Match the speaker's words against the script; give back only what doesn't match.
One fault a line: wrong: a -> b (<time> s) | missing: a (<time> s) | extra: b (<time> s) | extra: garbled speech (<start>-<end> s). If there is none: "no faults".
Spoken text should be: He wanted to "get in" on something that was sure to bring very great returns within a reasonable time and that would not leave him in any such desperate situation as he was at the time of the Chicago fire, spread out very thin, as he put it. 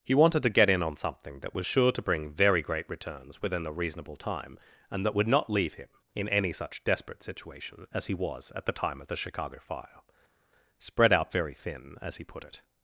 no faults